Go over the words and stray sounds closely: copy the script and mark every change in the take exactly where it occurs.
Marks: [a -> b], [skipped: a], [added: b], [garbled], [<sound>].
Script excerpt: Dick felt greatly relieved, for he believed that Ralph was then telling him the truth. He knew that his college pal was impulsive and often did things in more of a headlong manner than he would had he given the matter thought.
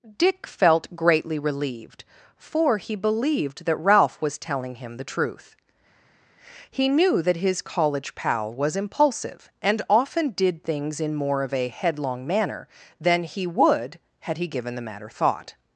Dick felt greatly relieved, for he believed that Ralph was [skipped: then] telling him the truth. He knew that his college pal was impulsive and often did things in more of a headlong manner than he would had he given the matter thought.